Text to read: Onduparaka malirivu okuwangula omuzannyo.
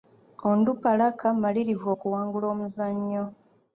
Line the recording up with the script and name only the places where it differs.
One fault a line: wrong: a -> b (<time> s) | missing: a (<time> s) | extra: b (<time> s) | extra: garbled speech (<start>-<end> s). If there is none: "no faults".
no faults